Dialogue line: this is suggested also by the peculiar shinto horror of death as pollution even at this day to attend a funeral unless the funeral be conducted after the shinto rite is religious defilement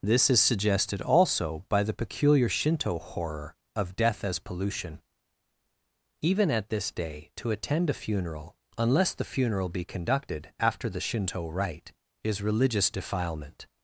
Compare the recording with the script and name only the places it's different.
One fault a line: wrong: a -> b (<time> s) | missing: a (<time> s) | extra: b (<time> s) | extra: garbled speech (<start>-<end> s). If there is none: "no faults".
no faults